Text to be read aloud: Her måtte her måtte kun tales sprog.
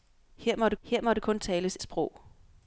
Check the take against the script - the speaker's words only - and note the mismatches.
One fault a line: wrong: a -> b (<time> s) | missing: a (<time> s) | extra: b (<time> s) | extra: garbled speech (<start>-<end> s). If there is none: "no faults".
no faults